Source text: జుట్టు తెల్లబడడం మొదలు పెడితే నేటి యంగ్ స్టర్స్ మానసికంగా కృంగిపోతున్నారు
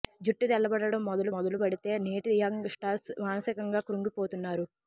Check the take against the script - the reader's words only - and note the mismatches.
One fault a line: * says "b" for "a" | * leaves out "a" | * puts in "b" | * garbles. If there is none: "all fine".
* puts in "మొదలు"